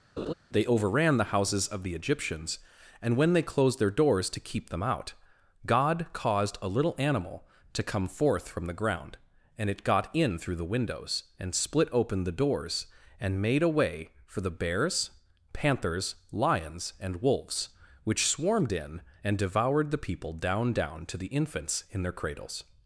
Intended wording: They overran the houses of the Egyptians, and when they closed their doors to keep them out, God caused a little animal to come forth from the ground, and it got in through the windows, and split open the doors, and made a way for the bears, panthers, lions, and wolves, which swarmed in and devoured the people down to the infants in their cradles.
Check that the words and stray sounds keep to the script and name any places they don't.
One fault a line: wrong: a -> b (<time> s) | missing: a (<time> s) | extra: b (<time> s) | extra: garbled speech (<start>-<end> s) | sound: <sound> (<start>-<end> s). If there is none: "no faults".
sound: laugh (0.2-0.3 s)
extra: down (20.7 s)